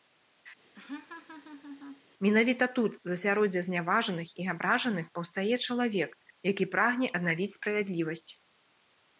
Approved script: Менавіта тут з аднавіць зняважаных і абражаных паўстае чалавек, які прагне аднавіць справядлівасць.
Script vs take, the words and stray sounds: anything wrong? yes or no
yes